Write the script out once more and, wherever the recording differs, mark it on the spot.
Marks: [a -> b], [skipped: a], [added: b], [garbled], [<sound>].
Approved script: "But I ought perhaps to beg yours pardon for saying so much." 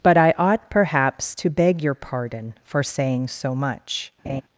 "But I ought perhaps to beg [yours -> your] pardon for saying so much." [laugh]